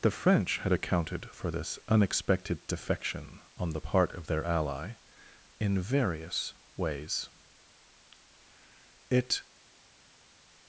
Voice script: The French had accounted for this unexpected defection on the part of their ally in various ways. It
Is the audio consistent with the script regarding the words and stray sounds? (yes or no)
yes